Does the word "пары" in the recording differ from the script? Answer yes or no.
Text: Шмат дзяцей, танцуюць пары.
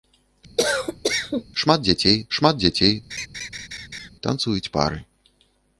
no